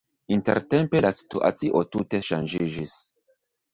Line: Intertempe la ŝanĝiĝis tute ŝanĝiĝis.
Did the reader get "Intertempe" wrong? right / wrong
right